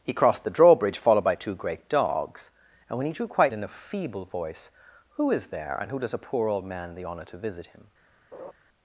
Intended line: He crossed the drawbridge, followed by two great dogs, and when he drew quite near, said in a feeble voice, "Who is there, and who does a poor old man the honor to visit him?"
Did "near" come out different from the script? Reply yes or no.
yes